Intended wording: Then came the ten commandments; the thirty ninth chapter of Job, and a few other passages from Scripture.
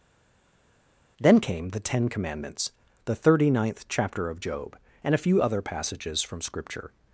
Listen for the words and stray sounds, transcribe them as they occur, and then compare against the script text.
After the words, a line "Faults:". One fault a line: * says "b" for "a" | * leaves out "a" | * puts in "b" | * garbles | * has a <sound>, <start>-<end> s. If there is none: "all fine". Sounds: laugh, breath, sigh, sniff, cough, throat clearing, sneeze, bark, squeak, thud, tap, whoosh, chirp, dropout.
Then came the ten commandments; the thirty ninth chapter of Job, and a few other passages from Scripture.
Faults:
all fine